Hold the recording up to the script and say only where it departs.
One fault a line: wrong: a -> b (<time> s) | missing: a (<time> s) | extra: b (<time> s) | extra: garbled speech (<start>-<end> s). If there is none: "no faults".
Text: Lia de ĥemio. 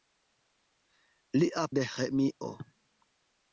no faults